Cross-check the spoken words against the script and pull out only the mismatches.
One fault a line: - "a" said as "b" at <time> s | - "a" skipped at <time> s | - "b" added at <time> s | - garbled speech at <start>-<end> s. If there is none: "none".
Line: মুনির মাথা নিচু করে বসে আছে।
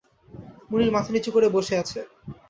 none